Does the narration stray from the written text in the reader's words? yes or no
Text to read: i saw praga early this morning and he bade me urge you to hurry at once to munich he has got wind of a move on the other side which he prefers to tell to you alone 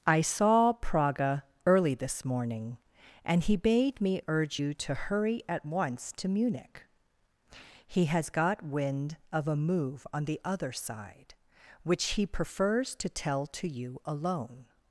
no